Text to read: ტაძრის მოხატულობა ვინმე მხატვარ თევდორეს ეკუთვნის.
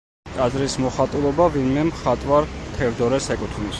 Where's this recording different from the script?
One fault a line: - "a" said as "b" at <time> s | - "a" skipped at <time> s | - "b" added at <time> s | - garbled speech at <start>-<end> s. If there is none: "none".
none